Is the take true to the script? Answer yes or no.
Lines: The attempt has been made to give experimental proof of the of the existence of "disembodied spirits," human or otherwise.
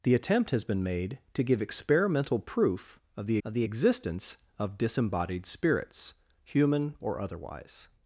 yes